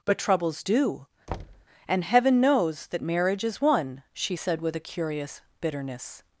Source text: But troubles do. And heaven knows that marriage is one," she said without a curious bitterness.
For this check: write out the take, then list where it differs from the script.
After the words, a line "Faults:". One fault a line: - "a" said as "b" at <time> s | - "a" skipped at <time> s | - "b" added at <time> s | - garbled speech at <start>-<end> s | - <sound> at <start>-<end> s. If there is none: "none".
But troubles do. And heaven knows that marriage is one," she said with a curious bitterness.
Faults:
- thud at 1.3-1.7 s
- "without" said as "with" at 4.6 s